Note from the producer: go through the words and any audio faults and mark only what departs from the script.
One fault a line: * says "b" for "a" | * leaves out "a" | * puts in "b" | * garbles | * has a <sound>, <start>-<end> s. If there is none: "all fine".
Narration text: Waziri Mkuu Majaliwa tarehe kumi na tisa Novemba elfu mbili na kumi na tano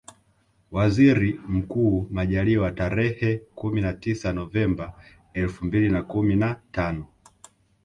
all fine